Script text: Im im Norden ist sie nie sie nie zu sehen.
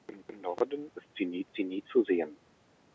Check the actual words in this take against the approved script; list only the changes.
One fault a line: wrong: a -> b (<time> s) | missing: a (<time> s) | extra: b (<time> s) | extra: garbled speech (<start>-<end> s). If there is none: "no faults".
no faults